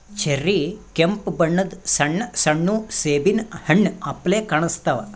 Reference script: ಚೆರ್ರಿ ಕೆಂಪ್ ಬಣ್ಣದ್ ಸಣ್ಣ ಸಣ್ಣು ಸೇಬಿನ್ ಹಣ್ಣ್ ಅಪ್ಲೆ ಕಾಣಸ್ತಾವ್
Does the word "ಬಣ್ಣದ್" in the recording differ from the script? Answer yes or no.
no